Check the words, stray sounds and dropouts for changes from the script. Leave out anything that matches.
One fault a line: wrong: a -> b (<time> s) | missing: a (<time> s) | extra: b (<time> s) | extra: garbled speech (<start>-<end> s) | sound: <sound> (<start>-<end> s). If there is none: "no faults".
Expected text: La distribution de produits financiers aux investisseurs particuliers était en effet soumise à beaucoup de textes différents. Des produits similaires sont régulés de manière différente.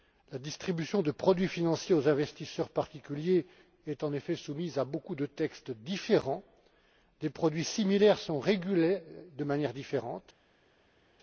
wrong: était -> est (3.9 s)